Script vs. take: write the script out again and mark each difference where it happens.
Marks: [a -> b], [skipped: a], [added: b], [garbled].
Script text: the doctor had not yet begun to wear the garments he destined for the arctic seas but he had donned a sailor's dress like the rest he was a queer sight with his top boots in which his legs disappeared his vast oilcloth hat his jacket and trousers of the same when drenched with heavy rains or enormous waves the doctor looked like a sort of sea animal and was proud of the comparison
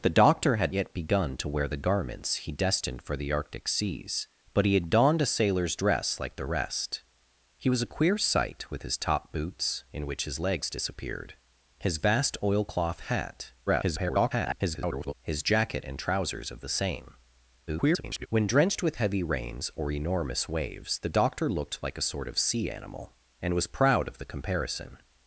the doctor had [skipped: not] yet begun to wear the garments he destined for the arctic seas but he had donned a sailor's dress like the rest he was a queer sight with his top boots in which his legs disappeared his vast oilcloth hat [garbled] his jacket and trousers of the same [garbled] when drenched with heavy rains or enormous waves the doctor looked like a sort of sea animal and was proud of the comparison